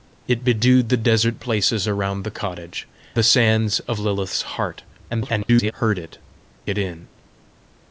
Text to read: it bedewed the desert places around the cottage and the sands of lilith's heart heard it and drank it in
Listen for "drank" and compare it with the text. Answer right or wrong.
wrong